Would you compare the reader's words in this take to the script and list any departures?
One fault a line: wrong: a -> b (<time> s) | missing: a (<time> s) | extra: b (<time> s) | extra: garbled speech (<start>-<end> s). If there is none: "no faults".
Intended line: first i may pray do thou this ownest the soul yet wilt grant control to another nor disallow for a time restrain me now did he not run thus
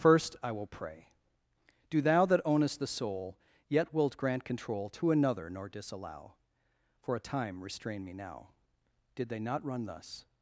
wrong: may -> will (0.5 s)
wrong: this -> that (2.2 s)
wrong: he -> they (9.3 s)